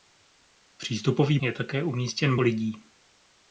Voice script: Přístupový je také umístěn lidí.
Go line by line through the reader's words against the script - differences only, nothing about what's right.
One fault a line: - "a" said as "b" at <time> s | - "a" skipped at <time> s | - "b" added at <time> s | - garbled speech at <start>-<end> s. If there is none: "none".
none